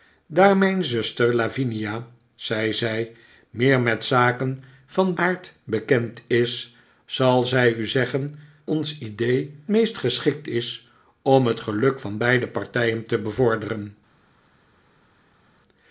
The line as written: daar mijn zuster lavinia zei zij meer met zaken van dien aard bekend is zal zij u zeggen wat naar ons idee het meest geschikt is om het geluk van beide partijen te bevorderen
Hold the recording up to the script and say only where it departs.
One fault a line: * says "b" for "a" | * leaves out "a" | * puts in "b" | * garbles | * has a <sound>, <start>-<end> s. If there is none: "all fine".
* leaves out "dien"
* leaves out "wat naar"
* leaves out "het"